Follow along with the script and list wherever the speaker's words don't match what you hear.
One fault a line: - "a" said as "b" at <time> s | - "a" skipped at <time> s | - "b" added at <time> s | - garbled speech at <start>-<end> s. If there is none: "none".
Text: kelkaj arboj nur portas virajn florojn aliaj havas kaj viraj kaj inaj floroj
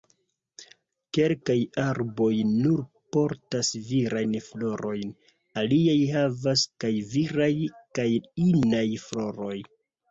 none